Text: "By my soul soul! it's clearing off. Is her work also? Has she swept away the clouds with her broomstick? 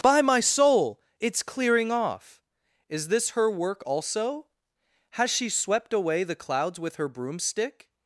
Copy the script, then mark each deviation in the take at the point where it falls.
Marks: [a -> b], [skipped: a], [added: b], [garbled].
"By my soul [skipped: soul!] it's clearing off. Is [added: this] her work also? Has she swept away the clouds with her broomstick?